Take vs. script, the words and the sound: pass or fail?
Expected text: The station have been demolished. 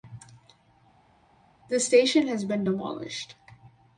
fail